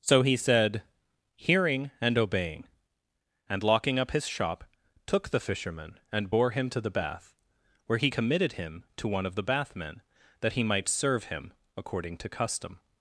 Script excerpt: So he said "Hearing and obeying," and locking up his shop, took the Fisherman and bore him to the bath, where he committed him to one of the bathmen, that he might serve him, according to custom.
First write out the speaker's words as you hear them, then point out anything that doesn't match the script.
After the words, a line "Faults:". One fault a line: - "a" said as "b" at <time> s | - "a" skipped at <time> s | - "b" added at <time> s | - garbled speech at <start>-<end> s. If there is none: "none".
So he said "Hearing and obeying," and locking up his shop, took the Fisherman and bore him to the bath, where he committed him to one of the bathmen, that he might serve him, according to custom.
Faults:
none